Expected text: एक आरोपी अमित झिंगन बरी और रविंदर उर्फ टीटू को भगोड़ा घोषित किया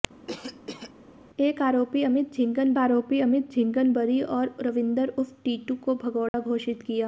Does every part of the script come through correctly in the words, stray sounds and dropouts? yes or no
no